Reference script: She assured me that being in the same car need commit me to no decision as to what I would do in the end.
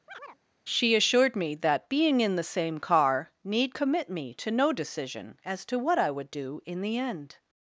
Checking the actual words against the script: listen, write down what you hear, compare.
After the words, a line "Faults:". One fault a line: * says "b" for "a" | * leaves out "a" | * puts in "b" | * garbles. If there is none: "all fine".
She assured me that being in the same car need commit me to no decision as to what I would do in the end.
Faults:
all fine